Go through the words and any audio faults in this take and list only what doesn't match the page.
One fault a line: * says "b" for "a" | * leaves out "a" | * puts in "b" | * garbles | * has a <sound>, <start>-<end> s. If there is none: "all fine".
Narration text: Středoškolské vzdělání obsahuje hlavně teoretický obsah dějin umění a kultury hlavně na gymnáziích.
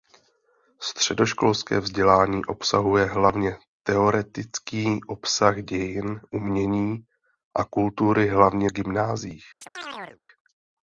* leaves out "na"
* has a chirp, 9.6-10.2 s